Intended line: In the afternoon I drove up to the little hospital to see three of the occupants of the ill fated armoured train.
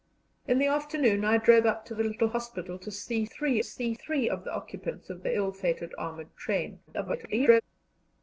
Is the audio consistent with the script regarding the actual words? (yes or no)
no